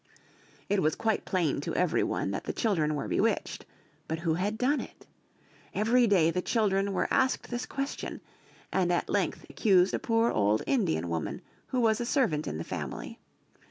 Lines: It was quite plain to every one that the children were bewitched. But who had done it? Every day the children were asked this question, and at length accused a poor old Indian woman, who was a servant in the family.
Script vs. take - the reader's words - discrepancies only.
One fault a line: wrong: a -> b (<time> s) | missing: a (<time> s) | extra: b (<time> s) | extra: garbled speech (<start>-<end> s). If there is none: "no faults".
no faults